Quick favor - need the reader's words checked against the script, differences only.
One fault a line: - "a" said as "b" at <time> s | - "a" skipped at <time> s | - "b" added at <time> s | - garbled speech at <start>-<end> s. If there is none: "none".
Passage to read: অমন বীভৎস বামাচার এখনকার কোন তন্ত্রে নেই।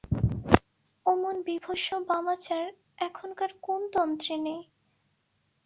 none